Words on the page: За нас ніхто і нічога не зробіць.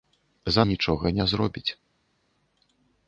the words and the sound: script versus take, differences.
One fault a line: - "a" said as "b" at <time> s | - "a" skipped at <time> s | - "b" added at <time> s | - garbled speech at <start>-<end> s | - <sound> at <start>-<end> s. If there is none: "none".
- "нас ніхто і" skipped at 0.6 s